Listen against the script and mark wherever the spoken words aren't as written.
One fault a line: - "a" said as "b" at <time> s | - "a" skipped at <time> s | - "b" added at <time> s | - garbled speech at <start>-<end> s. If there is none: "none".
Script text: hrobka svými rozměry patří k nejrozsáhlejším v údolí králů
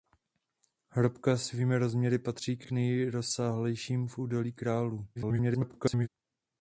- "k" added at 2.6 s
- garbled speech at 5.2-6.1 s